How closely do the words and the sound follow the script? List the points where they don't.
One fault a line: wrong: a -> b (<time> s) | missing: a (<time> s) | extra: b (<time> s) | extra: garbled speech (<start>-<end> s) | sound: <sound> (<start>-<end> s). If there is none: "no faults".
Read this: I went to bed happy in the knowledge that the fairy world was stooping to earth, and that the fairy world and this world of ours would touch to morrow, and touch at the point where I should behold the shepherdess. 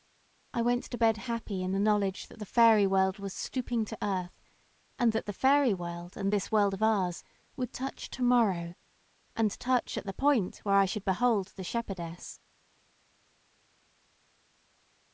no faults